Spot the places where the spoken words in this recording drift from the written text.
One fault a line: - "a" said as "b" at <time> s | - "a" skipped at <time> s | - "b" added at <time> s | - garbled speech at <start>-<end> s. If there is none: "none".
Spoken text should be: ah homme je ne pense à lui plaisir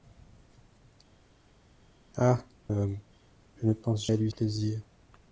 none